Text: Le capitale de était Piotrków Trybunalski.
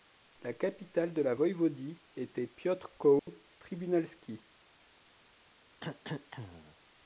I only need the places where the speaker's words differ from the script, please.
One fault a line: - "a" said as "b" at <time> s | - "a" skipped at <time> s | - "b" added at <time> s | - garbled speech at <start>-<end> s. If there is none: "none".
- "Le" said as "La" at 0.4 s
- "la voïvodie" added at 1.2 s